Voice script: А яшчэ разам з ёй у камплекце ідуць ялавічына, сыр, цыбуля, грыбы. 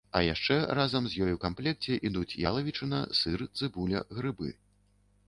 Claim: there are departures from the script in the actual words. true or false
false